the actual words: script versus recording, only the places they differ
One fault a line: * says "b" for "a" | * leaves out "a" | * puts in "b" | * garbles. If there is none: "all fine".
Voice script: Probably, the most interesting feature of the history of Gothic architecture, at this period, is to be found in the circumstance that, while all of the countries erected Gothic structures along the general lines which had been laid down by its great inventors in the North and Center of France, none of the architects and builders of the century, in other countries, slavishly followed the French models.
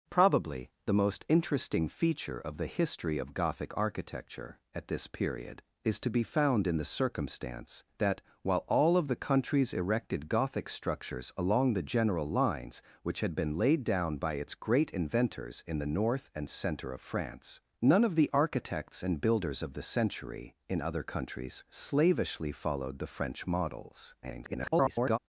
* garbles